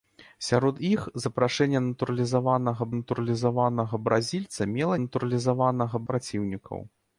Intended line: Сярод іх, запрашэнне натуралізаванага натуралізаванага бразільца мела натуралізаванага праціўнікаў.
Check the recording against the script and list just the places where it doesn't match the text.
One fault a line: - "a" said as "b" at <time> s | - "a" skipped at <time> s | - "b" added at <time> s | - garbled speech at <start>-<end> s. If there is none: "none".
none